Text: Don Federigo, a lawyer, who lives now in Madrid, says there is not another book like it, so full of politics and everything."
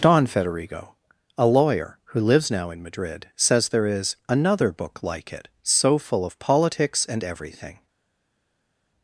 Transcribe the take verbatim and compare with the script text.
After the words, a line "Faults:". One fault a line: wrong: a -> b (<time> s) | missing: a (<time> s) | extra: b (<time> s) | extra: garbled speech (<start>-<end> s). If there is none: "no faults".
Don Federigo, a lawyer, who lives now in Madrid, says there is another book like it, so full of politics and everything."
Faults:
missing: not (4.2 s)